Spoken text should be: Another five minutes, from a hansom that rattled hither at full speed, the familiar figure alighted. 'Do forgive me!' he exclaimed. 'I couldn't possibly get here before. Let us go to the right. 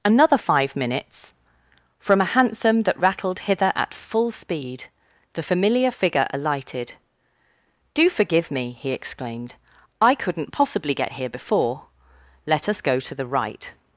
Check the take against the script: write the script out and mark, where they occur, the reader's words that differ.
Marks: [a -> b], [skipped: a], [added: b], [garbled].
Another five minutes, from a hansom that rattled hither at full speed, the familiar figure alighted. 'Do forgive me!' he exclaimed. 'I couldn't possibly get here before. Let us go to the right.